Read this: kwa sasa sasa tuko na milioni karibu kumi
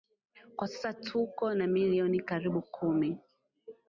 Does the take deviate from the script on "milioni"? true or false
false